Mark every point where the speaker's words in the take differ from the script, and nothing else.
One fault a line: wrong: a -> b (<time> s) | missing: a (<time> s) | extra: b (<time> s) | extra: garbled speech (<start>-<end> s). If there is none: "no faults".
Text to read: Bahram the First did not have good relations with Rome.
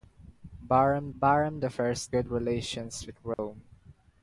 extra: bahram (1.2 s)
missing: did not have (2.1 s)